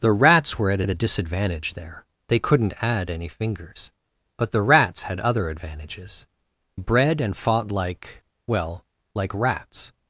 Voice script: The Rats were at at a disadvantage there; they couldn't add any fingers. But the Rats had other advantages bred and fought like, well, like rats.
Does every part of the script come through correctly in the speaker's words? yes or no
yes